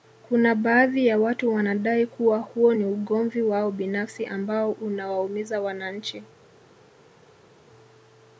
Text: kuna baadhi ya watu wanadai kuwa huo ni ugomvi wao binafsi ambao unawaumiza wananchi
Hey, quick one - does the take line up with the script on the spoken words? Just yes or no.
yes